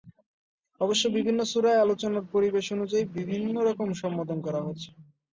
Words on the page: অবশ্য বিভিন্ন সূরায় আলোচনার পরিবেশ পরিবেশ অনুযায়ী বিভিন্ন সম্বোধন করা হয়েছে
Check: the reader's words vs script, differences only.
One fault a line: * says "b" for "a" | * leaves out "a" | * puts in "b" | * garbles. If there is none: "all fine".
* leaves out "পরিবেশ"
* puts in "রকম"